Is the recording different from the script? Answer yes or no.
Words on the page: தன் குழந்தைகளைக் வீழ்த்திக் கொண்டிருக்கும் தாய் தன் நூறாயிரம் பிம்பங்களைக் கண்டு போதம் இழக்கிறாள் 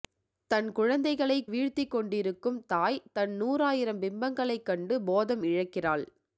no